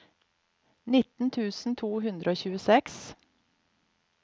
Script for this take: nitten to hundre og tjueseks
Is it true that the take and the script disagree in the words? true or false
true